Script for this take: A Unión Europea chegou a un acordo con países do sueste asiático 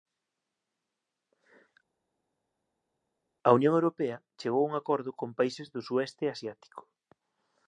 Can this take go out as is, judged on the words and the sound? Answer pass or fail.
pass